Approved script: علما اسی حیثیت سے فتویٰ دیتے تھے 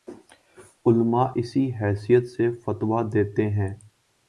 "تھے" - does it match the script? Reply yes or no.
no